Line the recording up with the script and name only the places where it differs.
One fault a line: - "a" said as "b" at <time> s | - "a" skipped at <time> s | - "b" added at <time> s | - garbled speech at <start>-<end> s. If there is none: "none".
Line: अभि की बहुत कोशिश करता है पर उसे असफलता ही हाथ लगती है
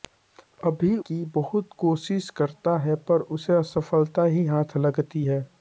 none